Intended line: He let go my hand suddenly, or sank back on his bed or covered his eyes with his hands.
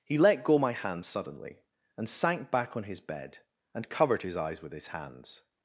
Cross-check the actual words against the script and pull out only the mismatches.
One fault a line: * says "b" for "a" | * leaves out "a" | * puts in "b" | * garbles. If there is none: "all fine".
* says "and" for "or"
* says "and" for "or"